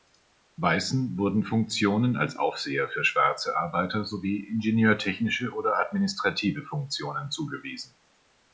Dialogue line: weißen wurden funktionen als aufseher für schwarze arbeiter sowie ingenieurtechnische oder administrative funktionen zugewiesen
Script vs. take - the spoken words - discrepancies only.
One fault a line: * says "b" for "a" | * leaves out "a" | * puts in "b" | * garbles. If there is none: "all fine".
all fine